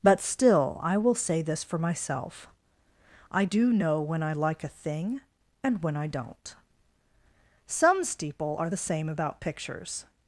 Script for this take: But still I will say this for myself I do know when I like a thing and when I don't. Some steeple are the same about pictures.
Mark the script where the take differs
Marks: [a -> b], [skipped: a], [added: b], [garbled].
But still I will say this for myself I do know when I like a thing and when I don't. Some steeple are the same about pictures.